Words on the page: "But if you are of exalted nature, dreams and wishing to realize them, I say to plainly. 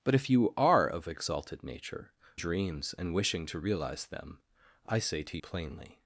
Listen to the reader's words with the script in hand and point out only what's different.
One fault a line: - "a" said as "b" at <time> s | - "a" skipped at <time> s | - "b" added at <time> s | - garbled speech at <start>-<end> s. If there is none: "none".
none